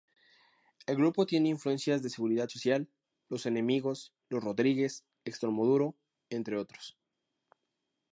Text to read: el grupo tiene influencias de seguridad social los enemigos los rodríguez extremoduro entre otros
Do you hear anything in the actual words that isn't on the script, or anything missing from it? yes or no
no